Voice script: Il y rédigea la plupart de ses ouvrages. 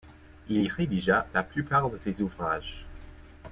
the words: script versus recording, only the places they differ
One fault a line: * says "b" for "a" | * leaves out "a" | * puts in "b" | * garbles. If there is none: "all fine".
all fine